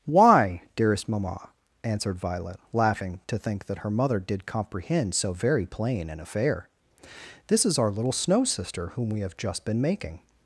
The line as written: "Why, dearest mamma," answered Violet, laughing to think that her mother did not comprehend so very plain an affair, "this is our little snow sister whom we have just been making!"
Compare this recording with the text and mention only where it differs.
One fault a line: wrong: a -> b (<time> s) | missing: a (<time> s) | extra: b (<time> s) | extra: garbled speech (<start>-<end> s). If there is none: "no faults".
missing: not (4.5 s)